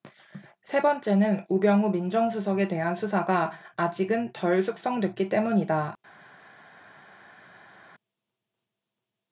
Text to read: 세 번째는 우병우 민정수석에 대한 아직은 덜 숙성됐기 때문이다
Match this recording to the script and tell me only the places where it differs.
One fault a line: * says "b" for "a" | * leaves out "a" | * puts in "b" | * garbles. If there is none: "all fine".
* puts in "수사가"